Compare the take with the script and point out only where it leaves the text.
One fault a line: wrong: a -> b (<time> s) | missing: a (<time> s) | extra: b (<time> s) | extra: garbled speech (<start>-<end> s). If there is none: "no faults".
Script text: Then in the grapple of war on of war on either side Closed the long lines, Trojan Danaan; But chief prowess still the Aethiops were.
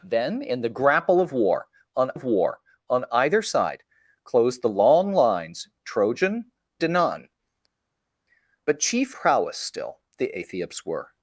no faults